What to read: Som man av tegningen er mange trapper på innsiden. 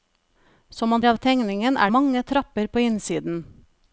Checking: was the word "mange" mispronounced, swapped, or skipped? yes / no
no